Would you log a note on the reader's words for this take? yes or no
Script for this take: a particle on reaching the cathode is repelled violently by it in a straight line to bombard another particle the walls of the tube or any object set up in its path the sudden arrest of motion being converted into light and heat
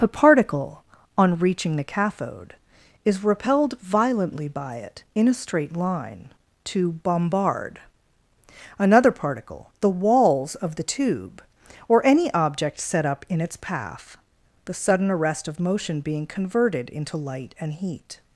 no